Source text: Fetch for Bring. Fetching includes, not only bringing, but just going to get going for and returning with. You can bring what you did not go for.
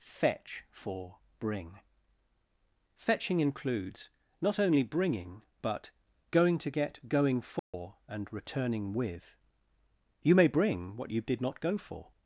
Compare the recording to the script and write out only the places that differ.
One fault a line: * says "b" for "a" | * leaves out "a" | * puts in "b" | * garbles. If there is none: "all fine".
* leaves out "just"
* says "may" for "can"